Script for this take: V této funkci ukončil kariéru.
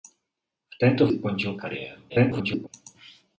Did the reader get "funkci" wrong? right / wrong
wrong